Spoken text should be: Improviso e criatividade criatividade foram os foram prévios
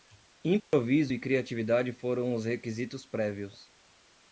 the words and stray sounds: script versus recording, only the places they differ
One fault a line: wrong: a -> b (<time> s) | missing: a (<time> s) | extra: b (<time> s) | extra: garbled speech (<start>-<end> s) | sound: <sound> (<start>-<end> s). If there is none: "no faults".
sound: dropout (0.6-0.7 s)
missing: criatividade (1.9 s)
wrong: foram -> requisitos (2.5 s)